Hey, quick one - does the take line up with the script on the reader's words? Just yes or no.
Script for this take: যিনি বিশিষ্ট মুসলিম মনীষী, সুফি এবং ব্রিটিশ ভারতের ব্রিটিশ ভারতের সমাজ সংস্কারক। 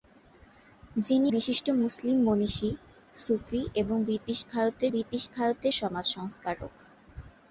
yes